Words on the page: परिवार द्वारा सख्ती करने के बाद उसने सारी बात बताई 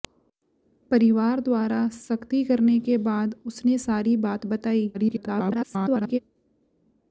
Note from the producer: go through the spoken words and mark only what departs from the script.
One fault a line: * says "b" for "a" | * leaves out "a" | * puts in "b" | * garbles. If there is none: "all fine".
* garbles